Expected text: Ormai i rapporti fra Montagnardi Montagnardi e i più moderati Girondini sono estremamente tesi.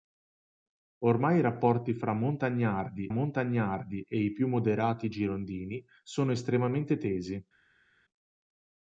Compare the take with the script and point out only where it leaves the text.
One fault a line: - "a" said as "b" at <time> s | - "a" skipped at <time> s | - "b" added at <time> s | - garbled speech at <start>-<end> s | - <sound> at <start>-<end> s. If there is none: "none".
none